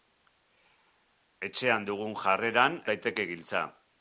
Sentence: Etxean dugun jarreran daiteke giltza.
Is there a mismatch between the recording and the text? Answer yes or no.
no